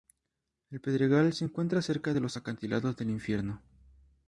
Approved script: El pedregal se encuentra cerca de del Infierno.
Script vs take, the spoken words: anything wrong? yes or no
yes